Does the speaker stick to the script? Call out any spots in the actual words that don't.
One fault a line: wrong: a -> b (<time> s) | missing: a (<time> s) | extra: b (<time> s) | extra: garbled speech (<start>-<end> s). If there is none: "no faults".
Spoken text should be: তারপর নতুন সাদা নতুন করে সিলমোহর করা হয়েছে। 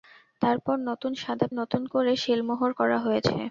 no faults